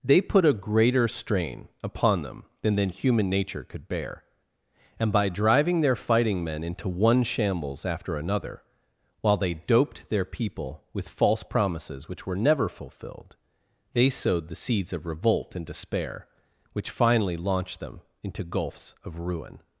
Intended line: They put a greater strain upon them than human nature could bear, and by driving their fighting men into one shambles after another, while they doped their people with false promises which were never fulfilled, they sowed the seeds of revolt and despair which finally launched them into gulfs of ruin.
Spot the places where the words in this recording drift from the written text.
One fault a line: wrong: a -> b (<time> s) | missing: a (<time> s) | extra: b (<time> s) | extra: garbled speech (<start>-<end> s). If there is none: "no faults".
extra: than (2.8 s)